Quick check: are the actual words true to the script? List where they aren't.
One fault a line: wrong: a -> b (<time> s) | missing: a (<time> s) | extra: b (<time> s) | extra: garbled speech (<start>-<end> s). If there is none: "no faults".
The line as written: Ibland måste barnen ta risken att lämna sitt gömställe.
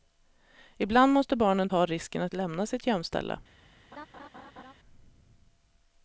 no faults